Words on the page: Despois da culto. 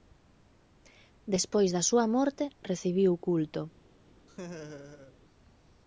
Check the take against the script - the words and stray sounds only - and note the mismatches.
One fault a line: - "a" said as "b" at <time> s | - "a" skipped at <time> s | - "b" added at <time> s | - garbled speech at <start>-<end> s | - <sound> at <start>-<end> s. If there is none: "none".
- "súa morte recibiu" added at 1.9 s
- laugh at 4.3-5.1 s